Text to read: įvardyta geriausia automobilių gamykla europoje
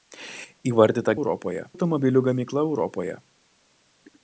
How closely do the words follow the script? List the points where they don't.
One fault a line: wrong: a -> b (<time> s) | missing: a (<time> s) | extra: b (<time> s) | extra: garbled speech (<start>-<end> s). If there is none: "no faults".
wrong: geriausia -> europoje (1.2 s)